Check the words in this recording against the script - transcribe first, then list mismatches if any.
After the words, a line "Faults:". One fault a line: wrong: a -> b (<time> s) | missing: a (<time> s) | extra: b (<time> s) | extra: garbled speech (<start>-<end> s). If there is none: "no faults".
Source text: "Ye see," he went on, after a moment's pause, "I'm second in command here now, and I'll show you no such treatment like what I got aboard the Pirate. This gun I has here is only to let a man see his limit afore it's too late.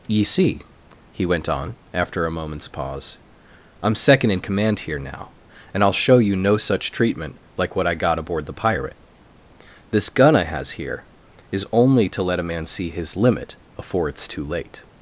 "Ye see," he went on, after a moment's pause, "I'm second in command here now, and I'll show you no such treatment like what I got aboard the Pirate. This gun I has here is only to let a man see his limit afore it's too late.
Faults:
no faults